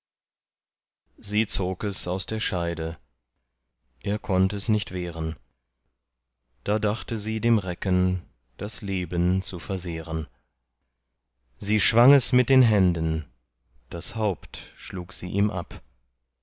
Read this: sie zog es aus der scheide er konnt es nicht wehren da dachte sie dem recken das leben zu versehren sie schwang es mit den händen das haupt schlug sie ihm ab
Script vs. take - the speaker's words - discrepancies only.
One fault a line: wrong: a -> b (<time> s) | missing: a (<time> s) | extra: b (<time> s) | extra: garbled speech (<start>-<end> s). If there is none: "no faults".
no faults